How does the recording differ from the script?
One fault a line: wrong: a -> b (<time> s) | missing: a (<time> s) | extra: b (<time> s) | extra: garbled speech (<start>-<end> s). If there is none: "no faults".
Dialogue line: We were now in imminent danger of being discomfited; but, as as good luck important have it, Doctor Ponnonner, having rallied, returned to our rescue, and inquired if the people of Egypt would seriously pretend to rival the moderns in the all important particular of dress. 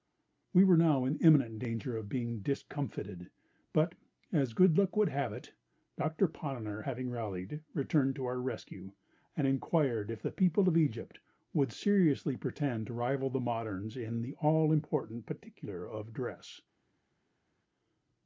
missing: as (4.5 s)
wrong: important -> would (5.0 s)